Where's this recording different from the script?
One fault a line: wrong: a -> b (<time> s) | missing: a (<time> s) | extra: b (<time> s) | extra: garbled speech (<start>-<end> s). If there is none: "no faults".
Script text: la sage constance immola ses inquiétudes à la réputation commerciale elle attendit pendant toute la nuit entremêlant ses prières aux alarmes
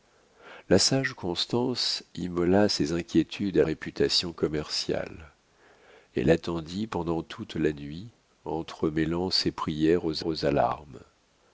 missing: la (3.6 s)
extra: aux (10.2 s)